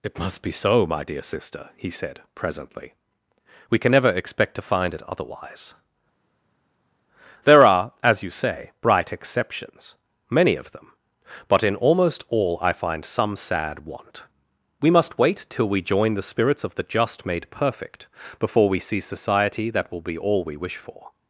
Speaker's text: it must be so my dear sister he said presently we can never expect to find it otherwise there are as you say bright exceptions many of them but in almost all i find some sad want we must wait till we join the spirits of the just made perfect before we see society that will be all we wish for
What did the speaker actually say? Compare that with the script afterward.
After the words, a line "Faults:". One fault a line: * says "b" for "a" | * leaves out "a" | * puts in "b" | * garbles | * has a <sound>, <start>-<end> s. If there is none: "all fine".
it must be so my dear sister he said presently we can never expect to find it otherwise there are as you say bright exceptions many of them but in almost all i find some sad want we must wait till we join the spirits of the just made perfect before we see society that will be all we wish for
Faults:
all fine